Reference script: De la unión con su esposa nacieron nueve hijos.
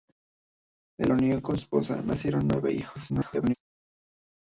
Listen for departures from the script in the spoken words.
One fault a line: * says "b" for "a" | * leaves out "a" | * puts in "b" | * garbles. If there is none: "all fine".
* leaves out "la"
* leaves out "su"
* garbles